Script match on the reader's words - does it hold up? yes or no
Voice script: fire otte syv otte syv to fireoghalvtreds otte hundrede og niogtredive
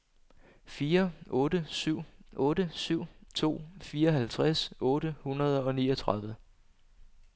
yes